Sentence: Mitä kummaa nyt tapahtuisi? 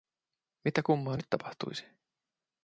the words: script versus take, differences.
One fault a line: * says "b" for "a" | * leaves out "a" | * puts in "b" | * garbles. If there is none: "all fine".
all fine